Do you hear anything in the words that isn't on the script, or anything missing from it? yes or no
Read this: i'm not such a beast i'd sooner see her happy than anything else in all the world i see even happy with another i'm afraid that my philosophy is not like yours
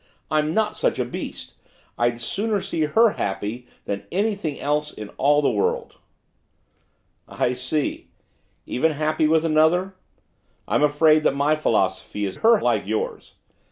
yes